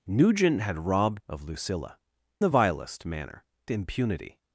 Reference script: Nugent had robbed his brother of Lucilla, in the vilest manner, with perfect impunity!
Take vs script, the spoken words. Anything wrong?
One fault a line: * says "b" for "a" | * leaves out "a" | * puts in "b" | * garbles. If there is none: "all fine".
* leaves out "his brother"
* leaves out "in"
* leaves out "with perfect"